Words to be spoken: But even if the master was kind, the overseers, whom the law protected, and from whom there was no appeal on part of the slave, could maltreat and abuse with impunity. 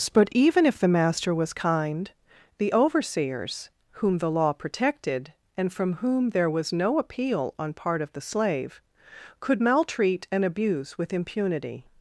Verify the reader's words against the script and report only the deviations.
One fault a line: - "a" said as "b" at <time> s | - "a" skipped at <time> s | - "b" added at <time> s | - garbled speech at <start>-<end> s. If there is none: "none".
none